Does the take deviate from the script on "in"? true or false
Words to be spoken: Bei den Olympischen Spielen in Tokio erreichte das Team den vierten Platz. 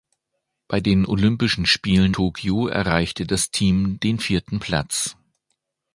true